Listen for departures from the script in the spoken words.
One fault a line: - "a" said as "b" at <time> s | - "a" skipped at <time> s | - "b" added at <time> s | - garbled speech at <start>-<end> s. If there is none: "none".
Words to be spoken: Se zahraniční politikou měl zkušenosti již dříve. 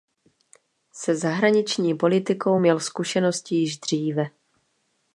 none